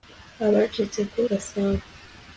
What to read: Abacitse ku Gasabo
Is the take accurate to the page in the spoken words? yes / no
yes